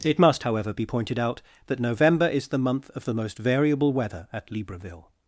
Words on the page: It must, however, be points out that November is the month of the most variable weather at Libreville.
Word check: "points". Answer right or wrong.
wrong